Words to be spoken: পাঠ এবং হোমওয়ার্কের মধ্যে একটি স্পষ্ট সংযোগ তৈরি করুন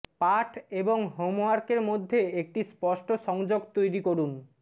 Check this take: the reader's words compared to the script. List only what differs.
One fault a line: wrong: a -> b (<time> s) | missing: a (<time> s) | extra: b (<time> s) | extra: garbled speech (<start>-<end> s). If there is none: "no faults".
no faults